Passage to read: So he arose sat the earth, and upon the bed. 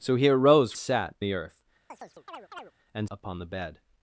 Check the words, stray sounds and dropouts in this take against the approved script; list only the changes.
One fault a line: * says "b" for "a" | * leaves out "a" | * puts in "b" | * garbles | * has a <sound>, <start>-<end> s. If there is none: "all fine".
* has a chirp, 1.9-2.7 s